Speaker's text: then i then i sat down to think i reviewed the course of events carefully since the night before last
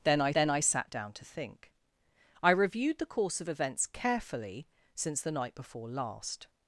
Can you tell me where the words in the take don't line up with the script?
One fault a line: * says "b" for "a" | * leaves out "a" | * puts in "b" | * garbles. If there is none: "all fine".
all fine